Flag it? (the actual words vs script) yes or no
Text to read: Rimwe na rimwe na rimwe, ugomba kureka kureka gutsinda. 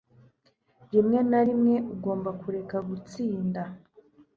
yes